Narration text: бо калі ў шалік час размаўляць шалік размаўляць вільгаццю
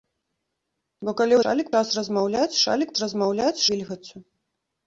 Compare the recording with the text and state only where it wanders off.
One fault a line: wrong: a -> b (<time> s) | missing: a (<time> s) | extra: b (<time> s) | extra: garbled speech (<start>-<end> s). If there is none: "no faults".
no faults